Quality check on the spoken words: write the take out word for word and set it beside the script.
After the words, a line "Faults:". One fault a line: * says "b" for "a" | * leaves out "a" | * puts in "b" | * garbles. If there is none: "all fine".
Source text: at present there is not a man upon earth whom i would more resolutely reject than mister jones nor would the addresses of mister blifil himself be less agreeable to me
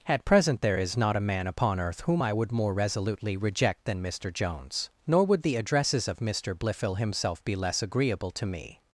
at present there is not a man upon earth whom i would more resolutely reject than mister jones nor would the addresses of mister blifil himself be less agreeable to me
Faults:
all fine